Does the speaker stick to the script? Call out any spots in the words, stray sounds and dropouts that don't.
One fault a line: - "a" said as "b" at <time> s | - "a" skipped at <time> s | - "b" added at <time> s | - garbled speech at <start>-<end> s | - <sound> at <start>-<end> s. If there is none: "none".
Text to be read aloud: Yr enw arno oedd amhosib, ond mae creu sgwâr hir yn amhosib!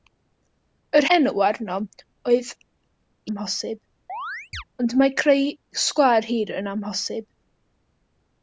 - chirp at 4.1-4.6 s